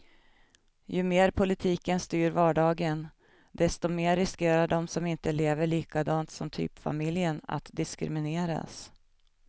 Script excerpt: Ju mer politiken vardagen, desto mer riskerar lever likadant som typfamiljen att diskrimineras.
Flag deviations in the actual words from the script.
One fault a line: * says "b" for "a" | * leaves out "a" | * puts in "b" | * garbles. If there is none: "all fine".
* puts in "styr"
* puts in "de som inte"